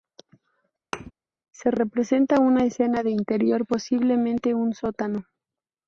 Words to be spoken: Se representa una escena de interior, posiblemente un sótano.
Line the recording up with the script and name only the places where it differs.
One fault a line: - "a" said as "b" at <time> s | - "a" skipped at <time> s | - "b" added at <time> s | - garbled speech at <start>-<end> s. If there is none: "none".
none